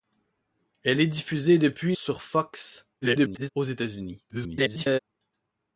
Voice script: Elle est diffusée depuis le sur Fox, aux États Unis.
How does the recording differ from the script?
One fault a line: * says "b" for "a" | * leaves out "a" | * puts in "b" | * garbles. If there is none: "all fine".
* leaves out "le"
* garbles
* garbles